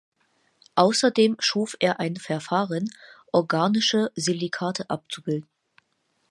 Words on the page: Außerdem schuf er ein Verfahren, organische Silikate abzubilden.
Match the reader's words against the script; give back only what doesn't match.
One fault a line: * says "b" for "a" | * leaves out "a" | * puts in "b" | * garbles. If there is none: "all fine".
all fine